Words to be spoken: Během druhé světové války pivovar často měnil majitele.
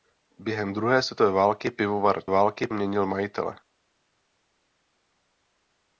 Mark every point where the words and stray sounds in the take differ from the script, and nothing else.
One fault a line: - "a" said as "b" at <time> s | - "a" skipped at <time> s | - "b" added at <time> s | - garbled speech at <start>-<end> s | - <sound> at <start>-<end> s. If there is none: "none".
- "často" said as "války" at 2.3 s